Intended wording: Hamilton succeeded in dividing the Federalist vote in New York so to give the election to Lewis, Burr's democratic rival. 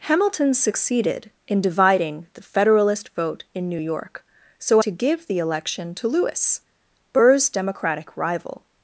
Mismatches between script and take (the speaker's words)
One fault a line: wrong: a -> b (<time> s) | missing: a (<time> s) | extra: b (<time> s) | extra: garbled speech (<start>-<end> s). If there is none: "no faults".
no faults